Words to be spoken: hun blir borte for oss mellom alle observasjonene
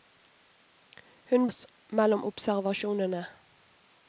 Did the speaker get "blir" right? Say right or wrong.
wrong